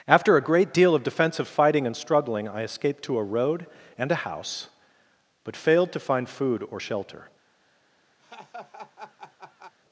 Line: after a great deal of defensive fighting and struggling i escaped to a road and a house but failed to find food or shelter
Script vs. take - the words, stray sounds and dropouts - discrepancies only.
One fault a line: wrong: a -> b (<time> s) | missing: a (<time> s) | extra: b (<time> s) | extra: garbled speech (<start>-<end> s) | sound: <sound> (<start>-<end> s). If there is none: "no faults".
sound: laugh (8.2-9.7 s)